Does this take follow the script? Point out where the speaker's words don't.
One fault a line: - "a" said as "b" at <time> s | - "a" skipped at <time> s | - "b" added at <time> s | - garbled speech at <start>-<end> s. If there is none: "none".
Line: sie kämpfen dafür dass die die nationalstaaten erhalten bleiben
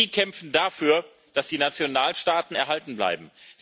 - "die" skipped at 1.6 s